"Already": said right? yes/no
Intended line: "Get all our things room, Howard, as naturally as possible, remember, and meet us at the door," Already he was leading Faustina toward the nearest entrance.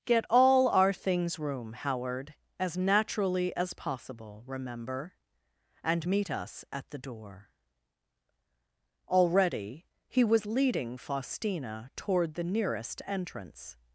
yes